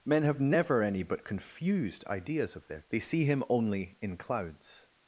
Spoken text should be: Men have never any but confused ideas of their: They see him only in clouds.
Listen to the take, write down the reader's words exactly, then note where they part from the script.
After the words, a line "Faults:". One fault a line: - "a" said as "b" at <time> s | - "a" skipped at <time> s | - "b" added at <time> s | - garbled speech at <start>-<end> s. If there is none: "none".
Men have never any but confused ideas of their: They see him only in clouds.
Faults:
none